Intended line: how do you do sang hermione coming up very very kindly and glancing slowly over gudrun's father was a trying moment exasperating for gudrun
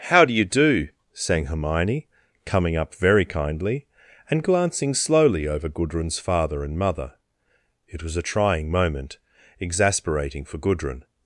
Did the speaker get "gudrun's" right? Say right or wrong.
right